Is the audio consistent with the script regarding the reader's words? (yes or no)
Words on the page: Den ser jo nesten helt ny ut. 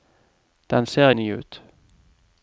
no